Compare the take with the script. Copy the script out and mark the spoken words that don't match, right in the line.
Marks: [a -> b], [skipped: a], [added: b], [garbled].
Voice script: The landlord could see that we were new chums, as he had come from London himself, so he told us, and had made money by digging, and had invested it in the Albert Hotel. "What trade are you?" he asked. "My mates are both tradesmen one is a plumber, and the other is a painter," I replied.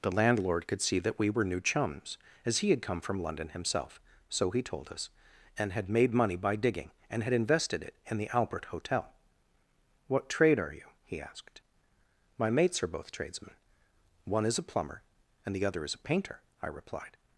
The landlord could see that we were new chums, as he had come from London himself, so he told us, and had made money by digging, and had invested it in the Albert Hotel. "What trade are you?" he asked. "My mates are both tradesmen one is a plumber, and the other is a painter," I replied.